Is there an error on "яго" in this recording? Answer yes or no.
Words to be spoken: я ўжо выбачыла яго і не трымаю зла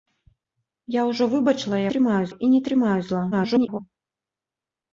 yes